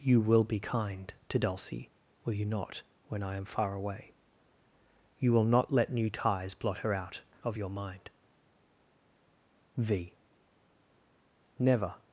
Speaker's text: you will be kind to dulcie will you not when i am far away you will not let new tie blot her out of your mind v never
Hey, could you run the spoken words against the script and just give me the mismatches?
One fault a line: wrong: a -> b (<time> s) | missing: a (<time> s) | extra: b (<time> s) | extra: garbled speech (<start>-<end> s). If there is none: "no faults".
wrong: tie -> ties (6.1 s)